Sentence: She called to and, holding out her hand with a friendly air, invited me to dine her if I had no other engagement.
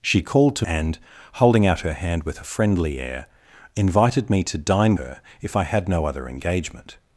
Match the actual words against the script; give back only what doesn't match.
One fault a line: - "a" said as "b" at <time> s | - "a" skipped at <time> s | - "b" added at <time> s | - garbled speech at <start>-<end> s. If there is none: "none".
none